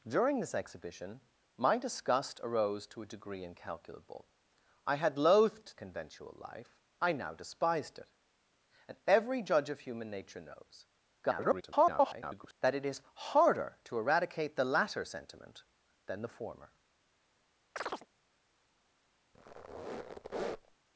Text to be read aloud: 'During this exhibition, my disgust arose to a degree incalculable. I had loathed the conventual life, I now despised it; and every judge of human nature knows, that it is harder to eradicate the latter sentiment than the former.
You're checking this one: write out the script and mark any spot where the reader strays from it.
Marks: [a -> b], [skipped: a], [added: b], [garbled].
'During this exhibition, my disgust arose to a degree incalculable. I had loathed [skipped: the] conventual life, I now despised it; and every judge of human nature knows, [garbled] that it is harder to eradicate the latter sentiment than the former.